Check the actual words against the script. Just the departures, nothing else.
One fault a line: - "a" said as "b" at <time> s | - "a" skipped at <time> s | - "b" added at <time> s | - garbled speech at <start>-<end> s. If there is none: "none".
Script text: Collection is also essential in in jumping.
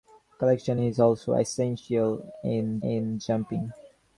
none